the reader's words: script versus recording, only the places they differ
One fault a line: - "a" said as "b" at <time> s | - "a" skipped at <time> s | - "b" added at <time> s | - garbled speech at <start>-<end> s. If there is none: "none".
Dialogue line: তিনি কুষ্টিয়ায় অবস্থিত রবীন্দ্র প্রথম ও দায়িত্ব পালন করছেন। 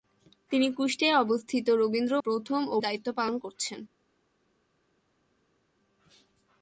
none